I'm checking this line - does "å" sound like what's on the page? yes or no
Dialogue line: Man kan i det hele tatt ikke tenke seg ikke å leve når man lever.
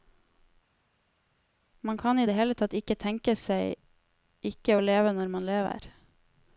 yes